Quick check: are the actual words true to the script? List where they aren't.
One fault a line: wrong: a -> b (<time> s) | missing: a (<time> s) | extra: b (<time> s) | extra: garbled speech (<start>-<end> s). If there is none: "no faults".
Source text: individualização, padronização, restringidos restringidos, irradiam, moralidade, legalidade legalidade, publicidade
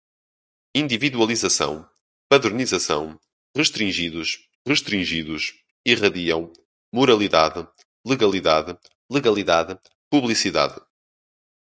no faults